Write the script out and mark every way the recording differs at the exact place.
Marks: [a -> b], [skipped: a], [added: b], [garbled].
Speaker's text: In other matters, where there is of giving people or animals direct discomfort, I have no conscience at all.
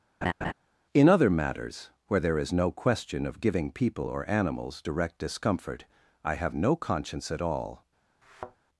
In other matters, where there is [added: no question] of giving people or animals direct discomfort, I have no conscience at all.